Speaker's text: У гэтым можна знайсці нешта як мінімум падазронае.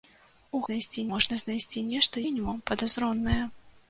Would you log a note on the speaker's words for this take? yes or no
yes